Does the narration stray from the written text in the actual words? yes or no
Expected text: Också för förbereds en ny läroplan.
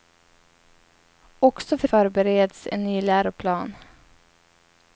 no